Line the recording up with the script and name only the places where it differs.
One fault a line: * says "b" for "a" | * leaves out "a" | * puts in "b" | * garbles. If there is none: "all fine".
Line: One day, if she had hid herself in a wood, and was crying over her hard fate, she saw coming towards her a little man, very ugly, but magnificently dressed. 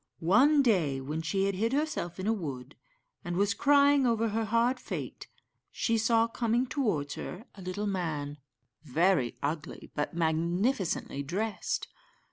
* says "when" for "if"